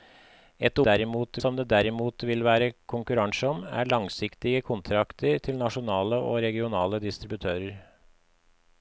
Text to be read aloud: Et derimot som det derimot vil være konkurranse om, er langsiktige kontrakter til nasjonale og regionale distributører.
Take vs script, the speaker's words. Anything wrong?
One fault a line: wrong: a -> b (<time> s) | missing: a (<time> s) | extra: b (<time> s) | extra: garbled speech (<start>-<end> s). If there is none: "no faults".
no faults